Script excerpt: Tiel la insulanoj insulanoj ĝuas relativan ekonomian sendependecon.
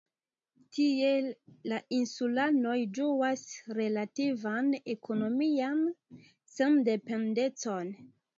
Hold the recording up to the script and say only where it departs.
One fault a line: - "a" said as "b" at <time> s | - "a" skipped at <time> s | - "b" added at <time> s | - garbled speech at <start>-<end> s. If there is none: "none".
- "insulanoj" skipped at 2.7 s